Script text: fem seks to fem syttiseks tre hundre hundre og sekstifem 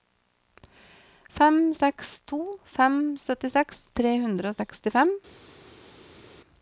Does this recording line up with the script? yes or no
no